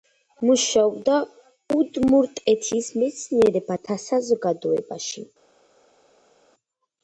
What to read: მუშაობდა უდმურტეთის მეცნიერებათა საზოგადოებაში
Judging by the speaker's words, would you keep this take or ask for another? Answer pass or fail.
pass